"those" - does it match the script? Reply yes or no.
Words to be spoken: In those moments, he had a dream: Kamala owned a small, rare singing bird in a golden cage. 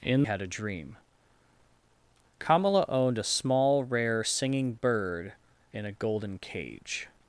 no